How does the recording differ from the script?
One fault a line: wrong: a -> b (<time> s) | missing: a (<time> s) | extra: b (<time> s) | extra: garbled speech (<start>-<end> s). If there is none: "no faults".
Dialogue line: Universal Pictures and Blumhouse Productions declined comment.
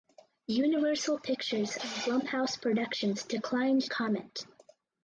no faults